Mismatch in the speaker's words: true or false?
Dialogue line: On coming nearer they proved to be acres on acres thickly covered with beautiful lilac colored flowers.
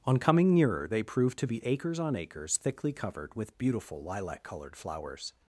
false